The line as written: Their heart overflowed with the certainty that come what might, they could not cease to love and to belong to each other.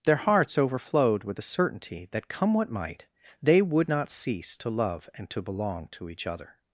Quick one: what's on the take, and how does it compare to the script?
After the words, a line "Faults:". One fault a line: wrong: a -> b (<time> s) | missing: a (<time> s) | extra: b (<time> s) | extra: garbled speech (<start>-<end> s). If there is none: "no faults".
Their hearts overflowed with the certainty that come what might, they would not cease to love and to belong to each other.
Faults:
wrong: heart -> hearts (0.1 s)
wrong: could -> would (3.6 s)